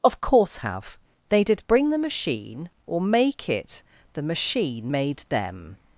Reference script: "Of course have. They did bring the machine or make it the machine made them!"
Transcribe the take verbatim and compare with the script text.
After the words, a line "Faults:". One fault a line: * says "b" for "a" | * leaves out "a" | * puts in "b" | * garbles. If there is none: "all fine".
"Of course have. They did bring the machine or make it the machine made them!"
Faults:
all fine